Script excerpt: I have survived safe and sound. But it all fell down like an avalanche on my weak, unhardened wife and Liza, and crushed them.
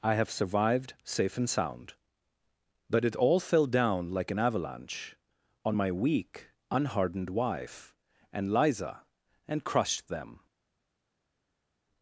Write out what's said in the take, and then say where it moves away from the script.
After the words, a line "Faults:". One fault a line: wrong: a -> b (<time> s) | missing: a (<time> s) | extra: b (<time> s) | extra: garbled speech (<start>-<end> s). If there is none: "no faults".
I have survived safe and sound. But it all fell down like an avalanche on my weak, unhardened wife and Liza, and crushed them.
Faults:
no faults